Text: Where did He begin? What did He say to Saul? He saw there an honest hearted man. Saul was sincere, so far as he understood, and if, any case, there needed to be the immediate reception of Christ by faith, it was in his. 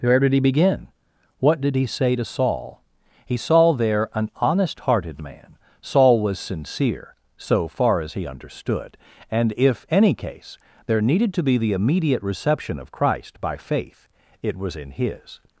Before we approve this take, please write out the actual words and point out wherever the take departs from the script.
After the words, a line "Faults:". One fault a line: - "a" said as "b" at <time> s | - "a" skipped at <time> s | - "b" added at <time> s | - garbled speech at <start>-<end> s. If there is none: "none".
Where did He begin? What did He say to Saul? He saw there an honest hearted man. Saul was sincere, so far as he understood, and if, any case, there needed to be the immediate reception of Christ by faith, it was in his.
Faults:
none